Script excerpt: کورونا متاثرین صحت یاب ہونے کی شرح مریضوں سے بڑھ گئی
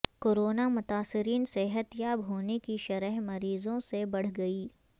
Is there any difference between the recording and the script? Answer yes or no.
no